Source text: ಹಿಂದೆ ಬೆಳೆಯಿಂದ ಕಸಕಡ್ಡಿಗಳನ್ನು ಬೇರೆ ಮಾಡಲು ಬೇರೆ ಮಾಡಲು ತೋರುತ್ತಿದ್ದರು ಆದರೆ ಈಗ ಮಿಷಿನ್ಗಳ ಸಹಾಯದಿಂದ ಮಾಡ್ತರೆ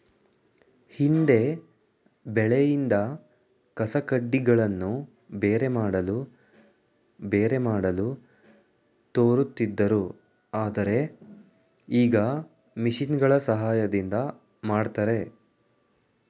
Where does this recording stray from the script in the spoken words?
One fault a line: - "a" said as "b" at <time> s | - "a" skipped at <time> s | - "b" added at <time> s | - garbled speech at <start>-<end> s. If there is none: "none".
none